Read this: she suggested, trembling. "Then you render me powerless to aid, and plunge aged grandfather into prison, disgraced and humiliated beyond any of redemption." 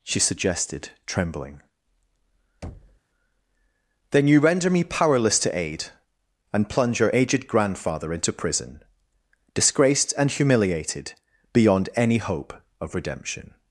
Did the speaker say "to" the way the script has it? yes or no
yes